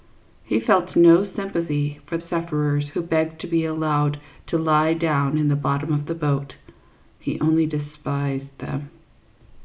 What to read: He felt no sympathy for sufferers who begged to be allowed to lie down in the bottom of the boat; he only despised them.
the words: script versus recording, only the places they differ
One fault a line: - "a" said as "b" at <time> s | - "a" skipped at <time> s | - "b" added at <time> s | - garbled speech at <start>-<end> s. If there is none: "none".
none